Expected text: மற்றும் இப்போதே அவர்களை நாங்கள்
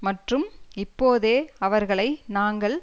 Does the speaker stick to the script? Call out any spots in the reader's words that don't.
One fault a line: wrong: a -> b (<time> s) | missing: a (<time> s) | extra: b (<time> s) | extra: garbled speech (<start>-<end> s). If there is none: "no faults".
no faults